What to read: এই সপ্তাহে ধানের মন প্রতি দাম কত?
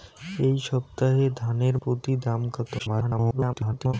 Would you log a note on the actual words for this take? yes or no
yes